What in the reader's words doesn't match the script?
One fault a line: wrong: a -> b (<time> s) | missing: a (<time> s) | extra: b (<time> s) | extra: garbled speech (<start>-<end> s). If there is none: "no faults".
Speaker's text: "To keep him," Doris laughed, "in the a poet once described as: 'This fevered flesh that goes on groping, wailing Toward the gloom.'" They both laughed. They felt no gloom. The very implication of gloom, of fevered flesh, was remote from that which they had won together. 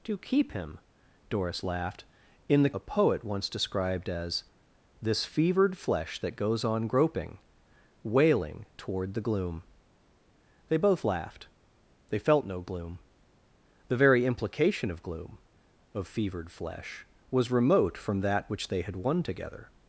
no faults